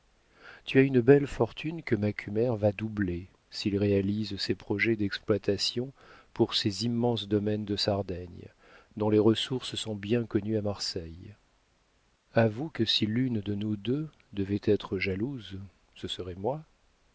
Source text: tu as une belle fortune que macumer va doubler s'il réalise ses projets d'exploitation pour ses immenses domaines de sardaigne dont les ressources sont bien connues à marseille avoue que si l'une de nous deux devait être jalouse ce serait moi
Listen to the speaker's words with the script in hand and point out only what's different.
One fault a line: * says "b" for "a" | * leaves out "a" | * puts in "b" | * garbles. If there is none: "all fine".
all fine